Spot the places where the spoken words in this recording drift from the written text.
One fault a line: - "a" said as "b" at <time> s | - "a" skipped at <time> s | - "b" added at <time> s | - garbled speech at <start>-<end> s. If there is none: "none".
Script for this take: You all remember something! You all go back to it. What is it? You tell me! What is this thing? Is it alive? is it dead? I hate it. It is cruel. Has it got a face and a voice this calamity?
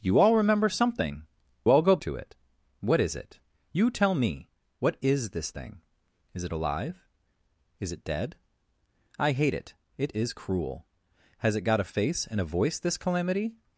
- "You" skipped at 1.3 s
- "back" skipped at 2.0 s